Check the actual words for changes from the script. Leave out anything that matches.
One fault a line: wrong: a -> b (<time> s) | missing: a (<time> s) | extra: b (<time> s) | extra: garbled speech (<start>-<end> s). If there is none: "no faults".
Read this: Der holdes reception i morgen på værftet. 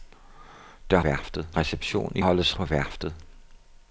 wrong: holdes -> værftet (1.0 s)
wrong: morgen -> holdes (2.2 s)